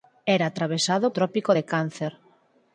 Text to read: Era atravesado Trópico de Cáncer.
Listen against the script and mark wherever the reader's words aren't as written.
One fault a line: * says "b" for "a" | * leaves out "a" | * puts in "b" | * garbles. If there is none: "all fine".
all fine